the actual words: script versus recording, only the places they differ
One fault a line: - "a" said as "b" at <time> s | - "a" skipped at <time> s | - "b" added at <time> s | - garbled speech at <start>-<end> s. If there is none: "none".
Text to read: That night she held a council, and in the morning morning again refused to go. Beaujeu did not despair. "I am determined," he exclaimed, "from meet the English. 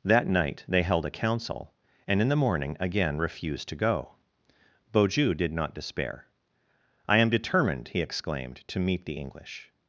- "she" said as "they" at 0.7 s
- "morning" skipped at 2.8 s
- "from" said as "to" at 8.7 s